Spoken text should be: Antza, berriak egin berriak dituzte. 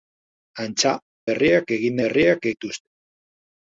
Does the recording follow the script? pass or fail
pass